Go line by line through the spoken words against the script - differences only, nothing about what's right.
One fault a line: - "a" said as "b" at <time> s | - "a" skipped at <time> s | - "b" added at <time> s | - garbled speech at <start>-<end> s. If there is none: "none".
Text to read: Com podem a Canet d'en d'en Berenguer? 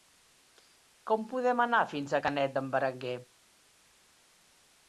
- "anar fins" added at 1.7 s
- "d'en" skipped at 2.7 s